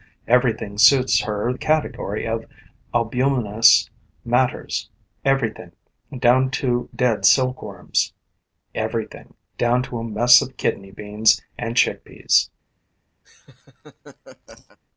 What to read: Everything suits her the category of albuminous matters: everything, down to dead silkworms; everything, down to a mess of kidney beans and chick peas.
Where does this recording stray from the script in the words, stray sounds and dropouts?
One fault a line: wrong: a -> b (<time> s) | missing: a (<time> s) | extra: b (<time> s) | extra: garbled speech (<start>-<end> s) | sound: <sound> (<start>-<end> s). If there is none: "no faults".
sound: laugh (13.2-14.8 s)